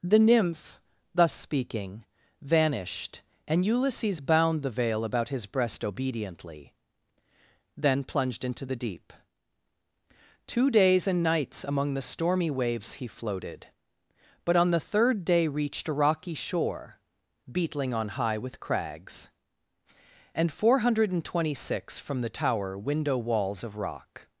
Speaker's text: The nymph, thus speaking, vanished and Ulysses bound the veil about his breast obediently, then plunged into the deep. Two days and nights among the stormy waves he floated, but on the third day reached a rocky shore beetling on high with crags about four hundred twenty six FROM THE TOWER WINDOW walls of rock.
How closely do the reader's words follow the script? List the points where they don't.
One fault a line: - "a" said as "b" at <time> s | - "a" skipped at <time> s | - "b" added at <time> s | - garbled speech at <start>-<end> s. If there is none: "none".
- "about" said as "and" at 20.3 s